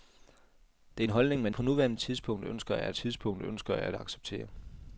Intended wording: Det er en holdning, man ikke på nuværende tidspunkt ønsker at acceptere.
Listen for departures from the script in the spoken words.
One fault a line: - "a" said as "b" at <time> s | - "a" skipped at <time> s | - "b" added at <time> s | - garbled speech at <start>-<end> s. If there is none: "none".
- "ikke" skipped at 1.5 s
- "tidspunkt ønsker at" added at 2.9 s